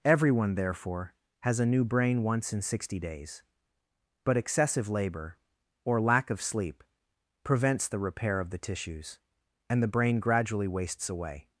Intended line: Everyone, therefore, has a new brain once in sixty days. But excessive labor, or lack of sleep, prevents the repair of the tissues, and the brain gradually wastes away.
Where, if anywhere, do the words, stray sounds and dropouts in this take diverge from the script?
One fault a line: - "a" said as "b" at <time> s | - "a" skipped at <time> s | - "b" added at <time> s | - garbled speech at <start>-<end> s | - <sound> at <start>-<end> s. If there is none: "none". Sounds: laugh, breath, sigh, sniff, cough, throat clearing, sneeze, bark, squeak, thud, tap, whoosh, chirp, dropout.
none